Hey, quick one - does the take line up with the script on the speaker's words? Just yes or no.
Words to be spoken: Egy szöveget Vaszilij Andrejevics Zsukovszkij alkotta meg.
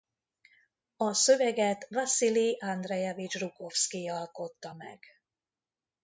no